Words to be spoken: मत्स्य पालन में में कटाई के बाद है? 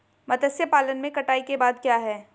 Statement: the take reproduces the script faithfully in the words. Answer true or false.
false